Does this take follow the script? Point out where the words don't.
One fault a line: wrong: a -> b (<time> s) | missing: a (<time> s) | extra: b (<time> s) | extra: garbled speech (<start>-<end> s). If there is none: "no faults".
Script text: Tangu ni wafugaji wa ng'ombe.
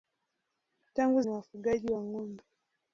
no faults